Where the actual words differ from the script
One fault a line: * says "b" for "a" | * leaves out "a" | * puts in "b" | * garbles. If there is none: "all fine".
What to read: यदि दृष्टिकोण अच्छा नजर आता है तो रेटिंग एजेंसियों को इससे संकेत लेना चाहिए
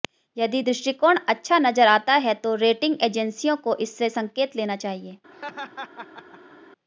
all fine